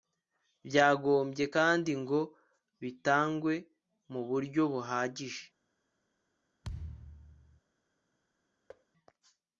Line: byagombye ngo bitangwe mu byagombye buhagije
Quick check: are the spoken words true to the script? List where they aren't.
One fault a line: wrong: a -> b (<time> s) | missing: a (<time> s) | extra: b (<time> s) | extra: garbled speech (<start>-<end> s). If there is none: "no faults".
extra: kandi (1.5 s)
wrong: byagombye -> buryo (4.3 s)